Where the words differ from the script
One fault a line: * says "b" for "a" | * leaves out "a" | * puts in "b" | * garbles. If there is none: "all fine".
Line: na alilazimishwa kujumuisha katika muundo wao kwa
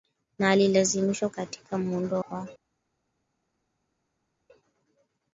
* leaves out "kujumuisha"
* leaves out "wao"